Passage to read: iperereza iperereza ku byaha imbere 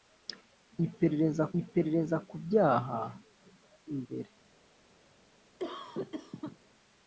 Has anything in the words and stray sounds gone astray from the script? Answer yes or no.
yes